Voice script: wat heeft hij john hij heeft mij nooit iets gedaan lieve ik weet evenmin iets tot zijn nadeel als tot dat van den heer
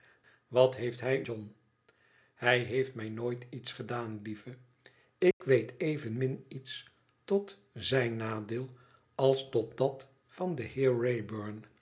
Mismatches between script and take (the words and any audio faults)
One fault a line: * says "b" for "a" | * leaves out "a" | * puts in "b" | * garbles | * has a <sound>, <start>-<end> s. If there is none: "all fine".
* has a dropout, 5.3-5.4 s